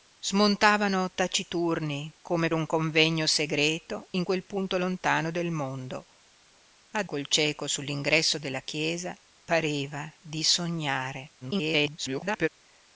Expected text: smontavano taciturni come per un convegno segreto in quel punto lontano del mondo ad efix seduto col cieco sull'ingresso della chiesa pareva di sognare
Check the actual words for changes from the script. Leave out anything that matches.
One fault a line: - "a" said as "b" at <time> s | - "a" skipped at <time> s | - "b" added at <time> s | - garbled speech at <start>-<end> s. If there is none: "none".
- "per" skipped at 2.5 s
- "efix seduto" skipped at 7.1 s
- garbled speech at 11.4-12.5 s